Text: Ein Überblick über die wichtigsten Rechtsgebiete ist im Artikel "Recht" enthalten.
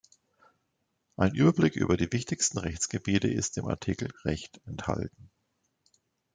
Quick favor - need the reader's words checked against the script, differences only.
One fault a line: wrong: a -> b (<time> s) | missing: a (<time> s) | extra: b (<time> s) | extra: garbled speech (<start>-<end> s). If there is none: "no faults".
no faults